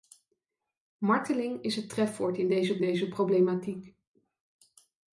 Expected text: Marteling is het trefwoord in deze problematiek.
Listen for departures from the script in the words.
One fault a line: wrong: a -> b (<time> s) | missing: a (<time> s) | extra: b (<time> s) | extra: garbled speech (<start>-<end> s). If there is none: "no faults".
extra: deze (2.8 s)